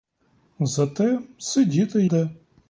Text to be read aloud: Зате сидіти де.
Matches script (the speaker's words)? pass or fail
pass